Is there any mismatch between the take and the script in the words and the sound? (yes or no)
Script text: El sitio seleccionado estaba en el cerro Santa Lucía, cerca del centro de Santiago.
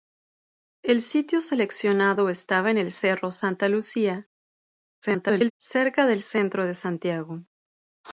yes